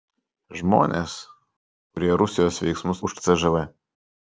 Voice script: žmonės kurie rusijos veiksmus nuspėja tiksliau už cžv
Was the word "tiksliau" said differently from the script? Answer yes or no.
yes